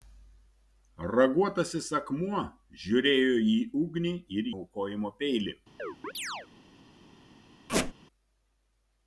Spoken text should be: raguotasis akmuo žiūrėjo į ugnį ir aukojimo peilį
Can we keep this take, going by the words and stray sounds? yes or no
no